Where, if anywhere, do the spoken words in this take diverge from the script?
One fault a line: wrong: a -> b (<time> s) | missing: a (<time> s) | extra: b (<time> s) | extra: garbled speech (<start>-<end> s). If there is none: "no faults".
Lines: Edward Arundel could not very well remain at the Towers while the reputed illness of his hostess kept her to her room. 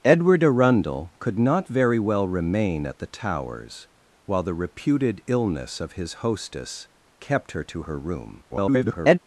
extra: garbled speech (8.5-9.2 s)